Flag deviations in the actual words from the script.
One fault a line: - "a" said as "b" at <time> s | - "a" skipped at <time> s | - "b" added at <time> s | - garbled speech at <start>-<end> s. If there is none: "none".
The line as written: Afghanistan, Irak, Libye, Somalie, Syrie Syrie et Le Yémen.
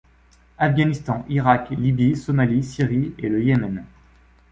- "Syrie" skipped at 3.1 s